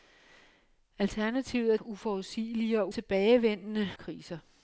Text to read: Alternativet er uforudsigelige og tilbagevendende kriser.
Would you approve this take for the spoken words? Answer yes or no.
yes